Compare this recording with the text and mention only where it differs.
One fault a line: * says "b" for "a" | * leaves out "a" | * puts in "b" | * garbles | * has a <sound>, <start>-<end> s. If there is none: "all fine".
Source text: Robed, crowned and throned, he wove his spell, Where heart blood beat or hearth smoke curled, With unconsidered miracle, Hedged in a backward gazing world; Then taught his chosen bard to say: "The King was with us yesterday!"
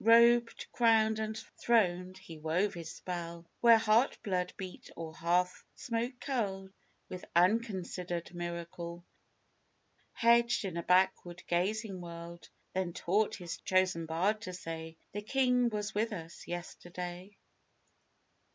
all fine